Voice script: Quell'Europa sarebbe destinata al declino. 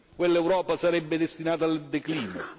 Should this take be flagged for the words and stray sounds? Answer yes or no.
no